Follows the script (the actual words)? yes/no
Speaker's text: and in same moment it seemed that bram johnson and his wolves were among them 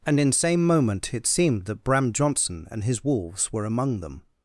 yes